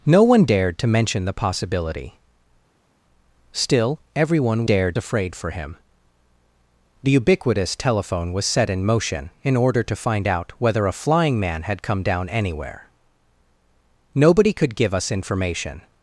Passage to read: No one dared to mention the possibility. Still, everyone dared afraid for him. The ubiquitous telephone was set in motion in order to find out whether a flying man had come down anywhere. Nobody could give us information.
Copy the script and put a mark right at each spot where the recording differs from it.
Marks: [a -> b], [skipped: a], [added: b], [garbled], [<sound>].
No one dared to mention the possibility. Still, everyone dared afraid for him. The ubiquitous telephone was set in motion in order to find out whether a flying man had come down anywhere. Nobody could give us information.